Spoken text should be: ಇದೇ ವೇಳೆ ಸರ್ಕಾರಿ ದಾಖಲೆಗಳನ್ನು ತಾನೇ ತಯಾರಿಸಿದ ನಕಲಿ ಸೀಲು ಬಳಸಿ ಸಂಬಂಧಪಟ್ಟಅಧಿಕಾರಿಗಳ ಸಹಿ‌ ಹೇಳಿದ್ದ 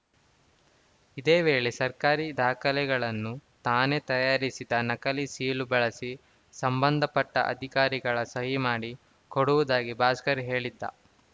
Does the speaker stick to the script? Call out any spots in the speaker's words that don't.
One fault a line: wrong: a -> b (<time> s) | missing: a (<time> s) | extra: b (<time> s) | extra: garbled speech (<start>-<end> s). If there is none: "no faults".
extra: ಮಾಡಿ ಕೊಡುವುದಾಗಿ ಭಾಸ್ಕರ್ (8.7 s)